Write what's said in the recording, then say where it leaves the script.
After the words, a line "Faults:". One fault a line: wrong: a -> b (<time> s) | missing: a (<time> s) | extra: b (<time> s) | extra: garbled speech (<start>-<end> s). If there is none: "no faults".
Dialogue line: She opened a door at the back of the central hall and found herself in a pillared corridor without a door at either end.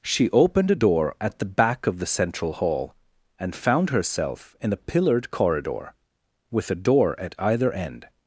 She opened a door at the back of the central hall and found herself in a pillared corridor with a door at either end.
Faults:
wrong: without -> with (6.5 s)